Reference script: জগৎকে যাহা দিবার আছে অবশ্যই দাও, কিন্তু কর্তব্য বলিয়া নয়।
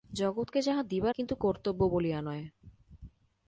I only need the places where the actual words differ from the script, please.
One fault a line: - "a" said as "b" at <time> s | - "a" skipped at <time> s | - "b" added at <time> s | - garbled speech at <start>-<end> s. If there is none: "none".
- "আছে অবশ্যই দাও" skipped at 1.1 s